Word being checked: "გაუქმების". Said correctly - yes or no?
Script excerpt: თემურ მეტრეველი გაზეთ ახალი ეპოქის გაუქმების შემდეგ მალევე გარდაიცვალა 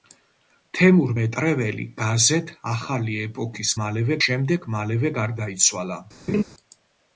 no